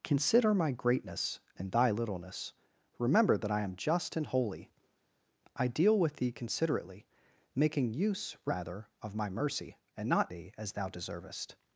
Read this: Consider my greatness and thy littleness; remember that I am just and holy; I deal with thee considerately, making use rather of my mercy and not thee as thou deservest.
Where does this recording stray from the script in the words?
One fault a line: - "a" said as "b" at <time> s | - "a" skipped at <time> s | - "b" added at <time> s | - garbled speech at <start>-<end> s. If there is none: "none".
none